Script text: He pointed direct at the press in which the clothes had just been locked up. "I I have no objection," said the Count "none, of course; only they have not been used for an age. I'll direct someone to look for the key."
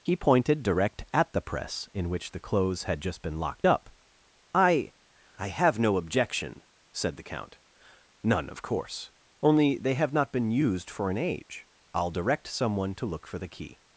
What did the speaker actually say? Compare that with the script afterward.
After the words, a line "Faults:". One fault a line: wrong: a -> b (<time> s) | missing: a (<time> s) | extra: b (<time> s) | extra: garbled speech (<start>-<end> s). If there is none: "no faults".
He pointed direct at the press in which the clothes had just been locked up. "I I have no objection," said the Count "none, of course; only they have not been used for an age. I'll direct someone to look for the key."
Faults:
no faults